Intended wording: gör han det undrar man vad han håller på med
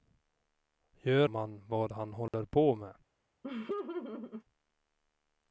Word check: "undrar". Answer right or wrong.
wrong